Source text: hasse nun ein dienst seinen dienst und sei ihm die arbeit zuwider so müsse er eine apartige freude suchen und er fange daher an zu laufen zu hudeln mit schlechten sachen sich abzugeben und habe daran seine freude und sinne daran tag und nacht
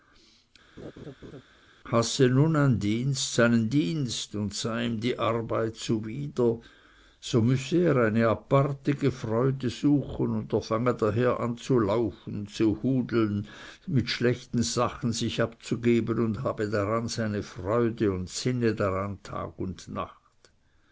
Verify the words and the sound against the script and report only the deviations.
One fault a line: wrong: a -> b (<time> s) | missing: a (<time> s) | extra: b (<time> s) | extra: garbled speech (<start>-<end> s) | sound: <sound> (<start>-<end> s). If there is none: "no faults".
sound: laugh (0.8-1.4 s)